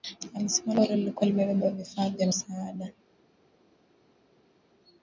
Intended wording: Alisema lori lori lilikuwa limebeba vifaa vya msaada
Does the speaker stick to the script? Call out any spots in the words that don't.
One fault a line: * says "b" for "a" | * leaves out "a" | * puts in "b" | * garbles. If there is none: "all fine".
* leaves out "lori"